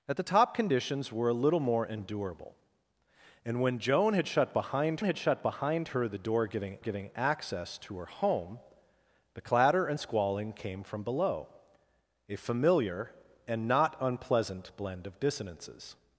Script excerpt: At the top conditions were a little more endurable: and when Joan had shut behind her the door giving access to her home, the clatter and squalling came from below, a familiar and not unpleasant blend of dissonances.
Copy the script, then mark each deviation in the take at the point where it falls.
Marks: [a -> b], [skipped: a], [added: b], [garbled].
At the top conditions were a little more endurable: and when Joan had shut behind [added: had shut behind] her the door giving [added: giving] access to her home, the clatter and squalling came from below, a familiar and not unpleasant blend of dissonances.